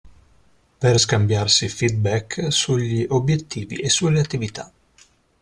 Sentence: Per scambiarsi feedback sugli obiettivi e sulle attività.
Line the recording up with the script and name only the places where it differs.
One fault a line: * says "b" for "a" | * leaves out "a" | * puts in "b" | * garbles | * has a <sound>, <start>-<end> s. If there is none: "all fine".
all fine